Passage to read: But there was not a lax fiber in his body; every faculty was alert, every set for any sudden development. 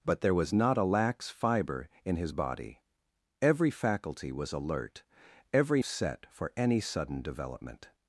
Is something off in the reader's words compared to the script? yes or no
no